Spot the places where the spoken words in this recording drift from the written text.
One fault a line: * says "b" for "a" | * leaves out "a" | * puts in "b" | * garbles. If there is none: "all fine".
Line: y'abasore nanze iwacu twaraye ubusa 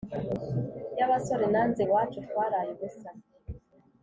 all fine